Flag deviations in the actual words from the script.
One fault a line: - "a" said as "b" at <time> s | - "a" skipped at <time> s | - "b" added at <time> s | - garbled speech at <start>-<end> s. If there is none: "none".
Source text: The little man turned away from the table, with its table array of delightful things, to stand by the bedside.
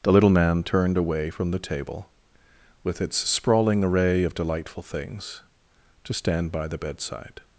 - "table" said as "sprawling" at 3.2 s